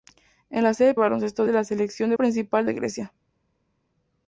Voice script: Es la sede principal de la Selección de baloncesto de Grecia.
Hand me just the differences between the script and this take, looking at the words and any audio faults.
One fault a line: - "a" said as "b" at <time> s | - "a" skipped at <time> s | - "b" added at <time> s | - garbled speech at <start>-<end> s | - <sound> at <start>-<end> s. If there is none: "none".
- "principal" said as "baloncesto" at 0.9 s
- "baloncesto" said as "principal" at 2.1 s